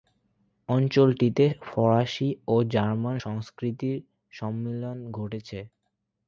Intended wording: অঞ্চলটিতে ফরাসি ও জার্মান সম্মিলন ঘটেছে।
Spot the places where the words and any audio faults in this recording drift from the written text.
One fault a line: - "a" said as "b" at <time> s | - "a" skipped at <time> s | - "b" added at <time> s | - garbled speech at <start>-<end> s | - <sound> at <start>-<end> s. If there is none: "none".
- "সংস্কৃতির" added at 3.2 s